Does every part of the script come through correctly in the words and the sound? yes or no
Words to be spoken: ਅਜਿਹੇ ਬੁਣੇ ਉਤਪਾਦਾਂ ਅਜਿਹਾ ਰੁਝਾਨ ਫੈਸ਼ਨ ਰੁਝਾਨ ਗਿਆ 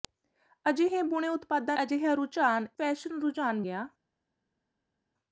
yes